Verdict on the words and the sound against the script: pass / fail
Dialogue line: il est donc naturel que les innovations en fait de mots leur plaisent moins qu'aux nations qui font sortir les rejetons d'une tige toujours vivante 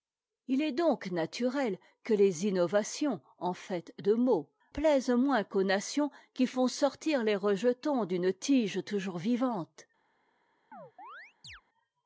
fail